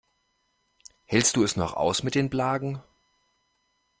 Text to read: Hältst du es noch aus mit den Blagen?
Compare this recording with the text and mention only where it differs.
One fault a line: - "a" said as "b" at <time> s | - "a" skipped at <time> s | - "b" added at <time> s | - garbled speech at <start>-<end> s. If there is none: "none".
none